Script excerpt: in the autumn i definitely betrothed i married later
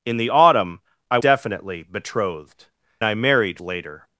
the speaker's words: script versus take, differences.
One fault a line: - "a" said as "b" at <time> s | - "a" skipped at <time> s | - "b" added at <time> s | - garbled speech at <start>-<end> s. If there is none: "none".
none